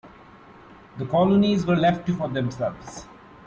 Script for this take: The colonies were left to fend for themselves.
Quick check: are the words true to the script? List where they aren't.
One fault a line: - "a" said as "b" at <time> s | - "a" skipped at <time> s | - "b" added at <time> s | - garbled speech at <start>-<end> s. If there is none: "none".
- "fend" skipped at 2.2 s